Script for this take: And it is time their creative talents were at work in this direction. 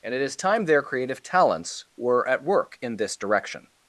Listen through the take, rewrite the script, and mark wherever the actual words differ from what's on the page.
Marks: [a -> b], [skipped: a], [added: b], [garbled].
And it is time their creative talents were at work in this direction.